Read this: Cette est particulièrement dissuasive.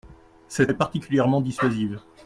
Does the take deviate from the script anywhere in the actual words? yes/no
no